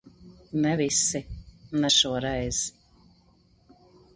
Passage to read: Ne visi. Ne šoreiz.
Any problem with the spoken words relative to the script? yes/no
no